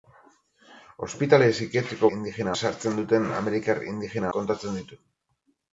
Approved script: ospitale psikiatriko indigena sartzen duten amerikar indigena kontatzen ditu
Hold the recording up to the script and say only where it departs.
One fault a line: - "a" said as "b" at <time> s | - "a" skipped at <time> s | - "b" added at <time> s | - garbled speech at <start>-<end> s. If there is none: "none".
none